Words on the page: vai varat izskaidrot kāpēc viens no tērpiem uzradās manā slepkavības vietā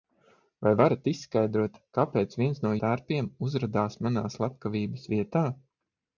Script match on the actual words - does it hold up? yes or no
yes